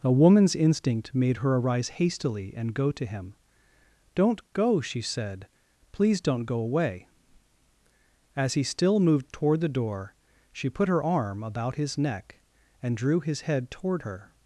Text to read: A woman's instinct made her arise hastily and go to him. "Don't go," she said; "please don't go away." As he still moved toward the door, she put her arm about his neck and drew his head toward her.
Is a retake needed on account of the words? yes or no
no